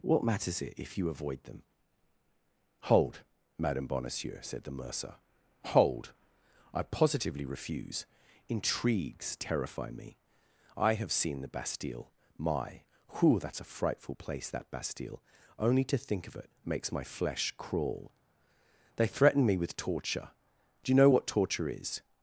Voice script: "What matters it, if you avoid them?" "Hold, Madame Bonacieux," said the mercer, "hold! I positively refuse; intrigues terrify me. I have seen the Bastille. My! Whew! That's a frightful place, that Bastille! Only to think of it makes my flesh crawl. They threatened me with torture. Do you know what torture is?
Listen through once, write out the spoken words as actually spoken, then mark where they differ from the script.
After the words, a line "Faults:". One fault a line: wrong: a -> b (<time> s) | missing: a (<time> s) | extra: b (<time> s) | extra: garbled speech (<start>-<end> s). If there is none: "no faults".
"What matters it, if you avoid them?" "Hold, Madame Bonacieux," said the mercer, "hold! I positively refuse; intrigues terrify me. I have seen the Bastille. My! Whew! That's a frightful place, that Bastille! Only to think of it makes my flesh crawl. They threaten me with torture. Do you know what torture is?
Faults:
wrong: threatened -> threaten (19.1 s)